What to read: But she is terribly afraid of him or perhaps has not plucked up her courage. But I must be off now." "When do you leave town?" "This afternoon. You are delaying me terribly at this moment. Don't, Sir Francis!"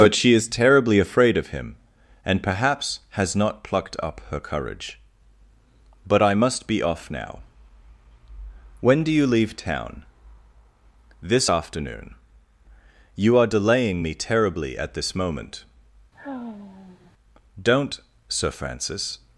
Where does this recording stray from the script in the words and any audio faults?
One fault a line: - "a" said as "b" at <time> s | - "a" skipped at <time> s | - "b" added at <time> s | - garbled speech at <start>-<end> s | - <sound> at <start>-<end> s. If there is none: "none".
- "or" said as "and" at 2.2 s
- sigh at 16.1-17.1 s